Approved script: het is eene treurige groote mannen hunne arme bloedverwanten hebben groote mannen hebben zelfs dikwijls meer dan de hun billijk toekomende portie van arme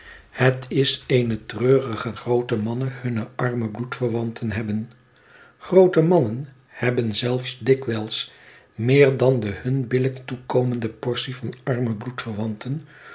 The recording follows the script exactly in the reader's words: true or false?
true